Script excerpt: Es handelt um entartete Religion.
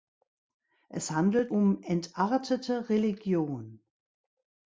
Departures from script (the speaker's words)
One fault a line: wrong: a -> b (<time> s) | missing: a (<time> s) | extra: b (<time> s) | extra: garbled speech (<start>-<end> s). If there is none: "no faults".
no faults